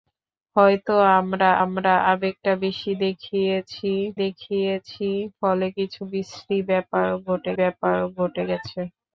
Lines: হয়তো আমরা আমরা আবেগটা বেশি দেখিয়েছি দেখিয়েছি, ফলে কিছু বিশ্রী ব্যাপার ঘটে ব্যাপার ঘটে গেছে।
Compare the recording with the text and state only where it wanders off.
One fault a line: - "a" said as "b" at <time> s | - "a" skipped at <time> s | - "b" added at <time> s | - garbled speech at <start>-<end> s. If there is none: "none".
none